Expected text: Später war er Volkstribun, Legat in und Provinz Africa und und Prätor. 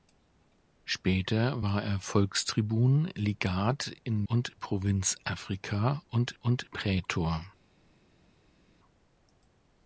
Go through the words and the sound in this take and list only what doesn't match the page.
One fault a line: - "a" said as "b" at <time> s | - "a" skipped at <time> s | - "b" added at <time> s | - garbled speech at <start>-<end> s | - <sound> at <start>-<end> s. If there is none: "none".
none